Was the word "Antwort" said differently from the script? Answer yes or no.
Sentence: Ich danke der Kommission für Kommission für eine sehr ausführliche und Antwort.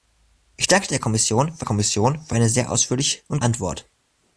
no